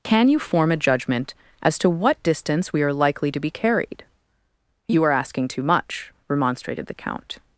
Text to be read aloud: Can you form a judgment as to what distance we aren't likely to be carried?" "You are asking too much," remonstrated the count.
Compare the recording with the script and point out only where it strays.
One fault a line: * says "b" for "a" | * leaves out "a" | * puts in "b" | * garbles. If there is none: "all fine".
* says "are" for "aren't"